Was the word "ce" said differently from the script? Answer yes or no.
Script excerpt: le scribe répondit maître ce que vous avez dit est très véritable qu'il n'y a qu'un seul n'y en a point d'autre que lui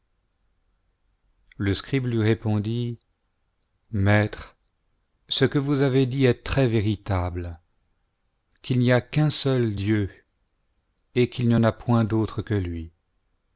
no